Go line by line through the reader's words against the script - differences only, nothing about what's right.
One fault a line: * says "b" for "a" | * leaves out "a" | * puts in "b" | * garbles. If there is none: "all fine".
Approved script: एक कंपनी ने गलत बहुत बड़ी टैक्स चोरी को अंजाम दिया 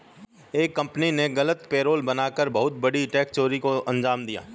* puts in "पेरोल बना कर"